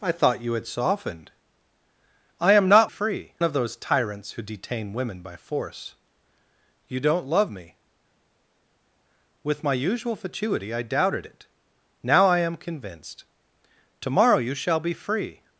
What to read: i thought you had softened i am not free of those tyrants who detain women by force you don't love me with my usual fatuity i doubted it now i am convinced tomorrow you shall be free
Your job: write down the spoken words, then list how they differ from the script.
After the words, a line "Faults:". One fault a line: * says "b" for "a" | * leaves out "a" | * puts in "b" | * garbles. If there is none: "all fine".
i thought you had softened i am not free of those tyrants who detain women by force you don't love me with my usual fatuity i doubted it now i am convinced tomorrow you shall be free
Faults:
all fine